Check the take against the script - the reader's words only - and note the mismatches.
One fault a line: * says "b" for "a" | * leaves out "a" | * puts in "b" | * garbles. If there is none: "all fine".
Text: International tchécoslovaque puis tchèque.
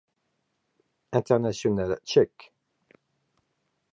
* leaves out "tchécoslovaque puis"